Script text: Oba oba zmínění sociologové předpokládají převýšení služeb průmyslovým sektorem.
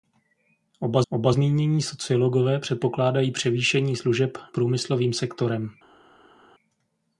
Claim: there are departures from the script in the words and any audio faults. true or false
false